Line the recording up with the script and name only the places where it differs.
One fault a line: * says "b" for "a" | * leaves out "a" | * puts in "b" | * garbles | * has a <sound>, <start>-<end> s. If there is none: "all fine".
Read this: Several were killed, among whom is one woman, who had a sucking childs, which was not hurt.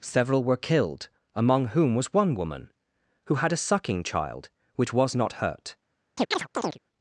* says "was" for "is"
* says "child" for "childs"
* has a chirp, 6.2-6.8 s